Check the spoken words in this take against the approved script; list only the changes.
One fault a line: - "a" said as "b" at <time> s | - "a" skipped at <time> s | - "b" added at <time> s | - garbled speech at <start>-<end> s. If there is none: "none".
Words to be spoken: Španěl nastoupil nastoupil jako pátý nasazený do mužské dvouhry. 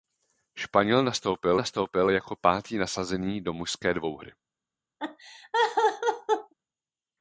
none